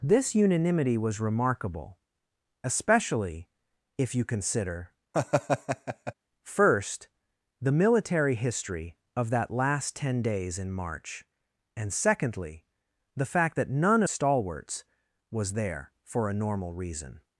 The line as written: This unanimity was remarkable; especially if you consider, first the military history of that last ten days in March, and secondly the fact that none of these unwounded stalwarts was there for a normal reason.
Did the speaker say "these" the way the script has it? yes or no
no